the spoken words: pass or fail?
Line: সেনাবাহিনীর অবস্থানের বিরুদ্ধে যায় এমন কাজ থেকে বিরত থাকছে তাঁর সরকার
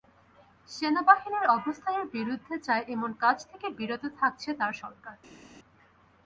pass